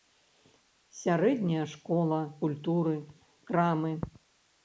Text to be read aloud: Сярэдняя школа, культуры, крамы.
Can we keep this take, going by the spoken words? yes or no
yes